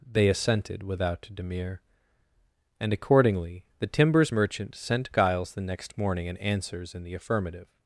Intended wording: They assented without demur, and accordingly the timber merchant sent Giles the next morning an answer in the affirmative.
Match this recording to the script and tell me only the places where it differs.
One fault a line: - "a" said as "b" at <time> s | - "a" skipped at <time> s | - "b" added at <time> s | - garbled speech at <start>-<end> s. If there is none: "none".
- "timber" said as "timbers" at 3.9 s
- "answer" said as "answers" at 6.4 s